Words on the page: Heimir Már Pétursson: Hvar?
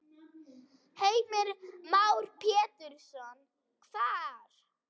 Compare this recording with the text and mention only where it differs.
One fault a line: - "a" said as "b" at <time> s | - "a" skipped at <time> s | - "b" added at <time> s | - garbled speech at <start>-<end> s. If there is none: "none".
none